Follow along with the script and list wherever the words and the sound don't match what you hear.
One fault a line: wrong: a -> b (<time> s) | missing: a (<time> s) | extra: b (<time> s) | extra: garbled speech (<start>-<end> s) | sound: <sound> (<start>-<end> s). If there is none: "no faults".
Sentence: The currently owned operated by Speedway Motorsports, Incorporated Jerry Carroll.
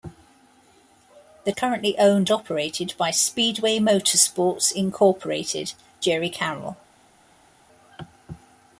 no faults